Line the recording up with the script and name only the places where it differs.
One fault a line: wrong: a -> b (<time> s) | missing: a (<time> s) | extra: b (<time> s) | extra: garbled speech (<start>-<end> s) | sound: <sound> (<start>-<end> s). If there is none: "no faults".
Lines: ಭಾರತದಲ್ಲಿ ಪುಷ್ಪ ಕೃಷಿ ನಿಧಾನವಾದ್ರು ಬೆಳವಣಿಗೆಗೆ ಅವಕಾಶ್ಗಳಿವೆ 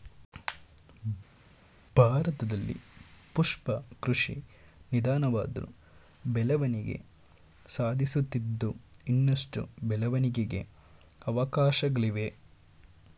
extra: ಬೆಳವಣಿಗೆ ಸಾಧಿಸುತ್ತಿದ್ದು ಇನ್ನಷ್ಟು (6.3 s)